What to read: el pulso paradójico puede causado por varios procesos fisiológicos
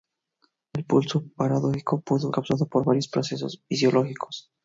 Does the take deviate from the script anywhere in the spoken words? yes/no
no